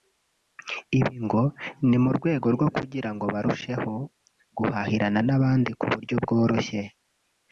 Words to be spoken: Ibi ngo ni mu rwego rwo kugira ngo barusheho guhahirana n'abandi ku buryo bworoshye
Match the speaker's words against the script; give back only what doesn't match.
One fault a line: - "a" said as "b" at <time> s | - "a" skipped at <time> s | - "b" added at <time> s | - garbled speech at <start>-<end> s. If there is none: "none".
none